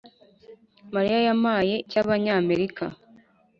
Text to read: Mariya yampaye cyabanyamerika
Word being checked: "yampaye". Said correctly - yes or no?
yes